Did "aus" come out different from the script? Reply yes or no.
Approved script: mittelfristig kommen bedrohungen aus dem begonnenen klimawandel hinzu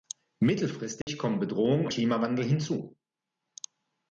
yes